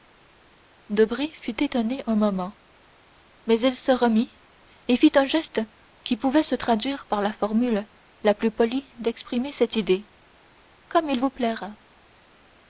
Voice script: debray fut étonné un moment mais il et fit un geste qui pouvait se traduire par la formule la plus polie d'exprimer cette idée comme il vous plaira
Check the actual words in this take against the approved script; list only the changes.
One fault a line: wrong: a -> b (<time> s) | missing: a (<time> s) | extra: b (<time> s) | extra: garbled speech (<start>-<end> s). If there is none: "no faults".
extra: se remit (3.8 s)